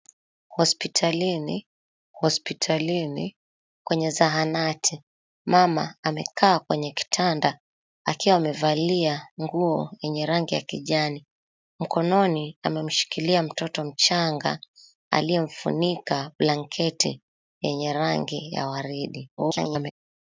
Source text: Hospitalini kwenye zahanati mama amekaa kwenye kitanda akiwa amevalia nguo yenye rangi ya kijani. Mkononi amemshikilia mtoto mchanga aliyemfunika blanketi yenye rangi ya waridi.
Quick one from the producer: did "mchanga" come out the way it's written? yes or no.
yes